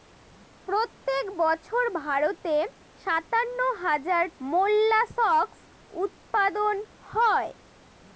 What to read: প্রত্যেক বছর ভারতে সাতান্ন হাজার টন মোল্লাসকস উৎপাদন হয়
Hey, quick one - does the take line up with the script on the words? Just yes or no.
no